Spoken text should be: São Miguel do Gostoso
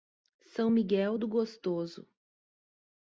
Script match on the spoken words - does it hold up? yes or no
yes